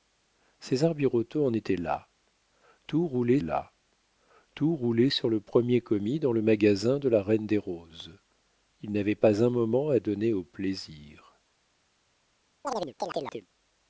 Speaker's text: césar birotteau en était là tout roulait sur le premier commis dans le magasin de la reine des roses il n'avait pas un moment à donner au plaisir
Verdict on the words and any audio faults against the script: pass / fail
fail